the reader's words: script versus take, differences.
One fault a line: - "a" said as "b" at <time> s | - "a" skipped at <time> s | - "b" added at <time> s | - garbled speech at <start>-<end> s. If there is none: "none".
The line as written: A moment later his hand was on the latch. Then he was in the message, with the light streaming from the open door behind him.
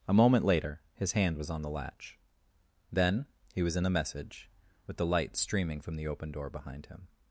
none